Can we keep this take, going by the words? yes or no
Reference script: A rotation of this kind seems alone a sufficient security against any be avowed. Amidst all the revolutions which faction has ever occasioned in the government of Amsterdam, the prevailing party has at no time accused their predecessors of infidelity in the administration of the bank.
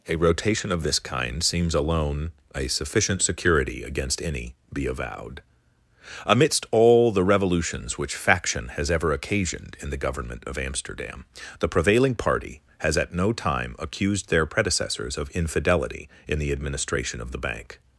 yes